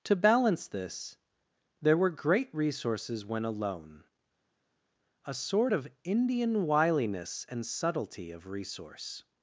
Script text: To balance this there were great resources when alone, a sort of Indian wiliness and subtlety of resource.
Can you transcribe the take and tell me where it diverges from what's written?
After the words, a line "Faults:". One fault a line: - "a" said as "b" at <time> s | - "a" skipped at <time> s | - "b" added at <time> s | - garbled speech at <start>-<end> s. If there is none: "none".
To balance this there were great resources when alone, a sort of Indian wiliness and subtlety of resource.
Faults:
none